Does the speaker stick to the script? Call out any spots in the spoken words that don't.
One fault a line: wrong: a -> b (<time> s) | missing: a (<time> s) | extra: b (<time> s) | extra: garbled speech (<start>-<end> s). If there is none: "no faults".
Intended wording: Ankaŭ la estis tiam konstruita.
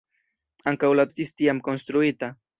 no faults